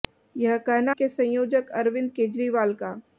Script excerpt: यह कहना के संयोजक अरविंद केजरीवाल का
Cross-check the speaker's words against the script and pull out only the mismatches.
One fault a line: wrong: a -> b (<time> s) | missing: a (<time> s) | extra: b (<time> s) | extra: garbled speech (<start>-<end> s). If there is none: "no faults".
no faults